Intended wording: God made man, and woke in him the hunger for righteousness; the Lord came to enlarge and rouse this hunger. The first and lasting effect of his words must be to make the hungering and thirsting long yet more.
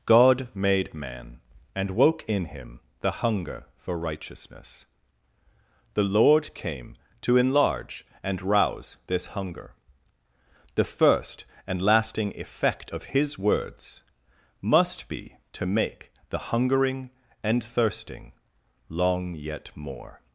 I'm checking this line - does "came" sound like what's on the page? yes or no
yes